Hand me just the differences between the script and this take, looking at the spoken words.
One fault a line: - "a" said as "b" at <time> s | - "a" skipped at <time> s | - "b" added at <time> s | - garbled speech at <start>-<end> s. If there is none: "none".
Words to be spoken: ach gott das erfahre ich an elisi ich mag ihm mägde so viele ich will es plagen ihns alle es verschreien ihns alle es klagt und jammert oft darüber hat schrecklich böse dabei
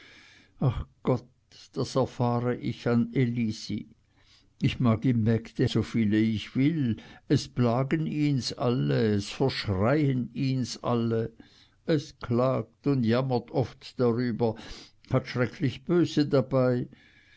none